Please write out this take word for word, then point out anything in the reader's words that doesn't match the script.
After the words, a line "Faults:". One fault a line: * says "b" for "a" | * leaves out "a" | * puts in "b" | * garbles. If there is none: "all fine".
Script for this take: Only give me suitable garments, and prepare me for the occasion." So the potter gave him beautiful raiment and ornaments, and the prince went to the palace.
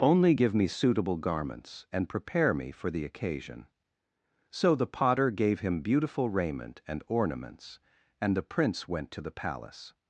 Only give me suitable garments, and prepare me for the occasion." So the potter gave him beautiful raiment and ornaments, and the prince went to the palace.
Faults:
all fine